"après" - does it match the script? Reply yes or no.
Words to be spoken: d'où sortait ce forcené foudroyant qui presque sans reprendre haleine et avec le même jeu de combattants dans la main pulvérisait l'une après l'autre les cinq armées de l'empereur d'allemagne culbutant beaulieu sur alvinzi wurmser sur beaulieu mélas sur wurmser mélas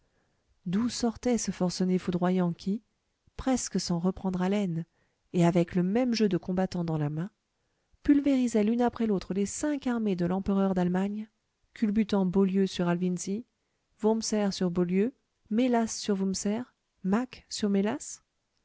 yes